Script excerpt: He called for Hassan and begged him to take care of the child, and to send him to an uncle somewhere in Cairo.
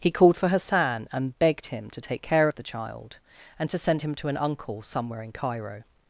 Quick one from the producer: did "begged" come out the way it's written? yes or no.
yes